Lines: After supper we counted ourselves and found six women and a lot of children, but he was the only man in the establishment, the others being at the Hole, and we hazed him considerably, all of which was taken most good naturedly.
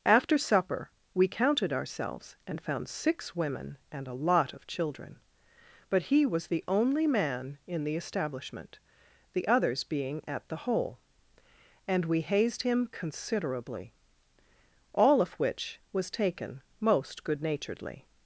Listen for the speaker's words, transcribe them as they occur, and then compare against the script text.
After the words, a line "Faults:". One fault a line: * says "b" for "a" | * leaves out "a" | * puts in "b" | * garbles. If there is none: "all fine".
After supper we counted ourselves and found six women and a lot of children, but he was the only man in the establishment, the others being at the Hole, and we hazed him considerably, all of which was taken most good naturedly.
Faults:
all fine